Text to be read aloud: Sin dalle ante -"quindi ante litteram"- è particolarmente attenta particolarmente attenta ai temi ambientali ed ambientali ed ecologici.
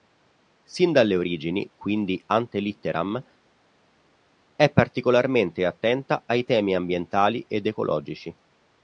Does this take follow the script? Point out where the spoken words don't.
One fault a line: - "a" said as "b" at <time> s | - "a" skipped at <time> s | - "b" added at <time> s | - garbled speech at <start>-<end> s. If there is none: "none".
- "ante" said as "origini" at 1.1 s
- "particolarmente attenta" skipped at 6.2 s
- "ambientali ed" skipped at 7.6 s